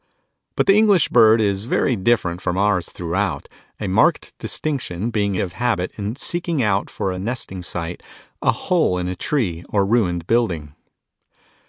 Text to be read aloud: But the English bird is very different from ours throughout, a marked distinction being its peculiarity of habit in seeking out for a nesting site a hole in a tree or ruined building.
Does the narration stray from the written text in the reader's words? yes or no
yes